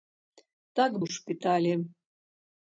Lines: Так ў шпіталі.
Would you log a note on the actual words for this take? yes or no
no